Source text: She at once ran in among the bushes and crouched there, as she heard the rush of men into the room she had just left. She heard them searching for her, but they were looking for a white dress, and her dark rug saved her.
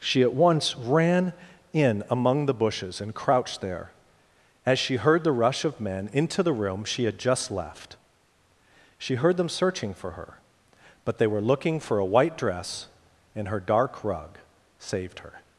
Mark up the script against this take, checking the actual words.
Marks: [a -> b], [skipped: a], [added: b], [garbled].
She at once ran in among the bushes and crouched there, as she heard the rush of men into the room she had just left. She heard them searching for her, but they were looking for a white dress, and her dark rug saved her.